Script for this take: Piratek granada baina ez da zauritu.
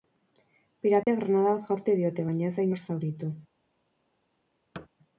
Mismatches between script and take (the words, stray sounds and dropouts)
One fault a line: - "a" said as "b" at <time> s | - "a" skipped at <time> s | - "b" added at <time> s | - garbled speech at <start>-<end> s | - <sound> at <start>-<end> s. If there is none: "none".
- dropout at 1.0-1.1 s
- "bat jaurti diote" added at 1.5 s
- "inor" added at 2.7 s
- thud at 4.7-4.9 s